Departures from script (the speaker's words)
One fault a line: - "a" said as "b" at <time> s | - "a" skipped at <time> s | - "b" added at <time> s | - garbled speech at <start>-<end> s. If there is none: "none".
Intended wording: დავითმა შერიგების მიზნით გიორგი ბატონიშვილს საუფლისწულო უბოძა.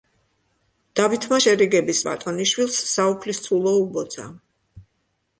- "მიზნით გიორგი" skipped at 2.0 s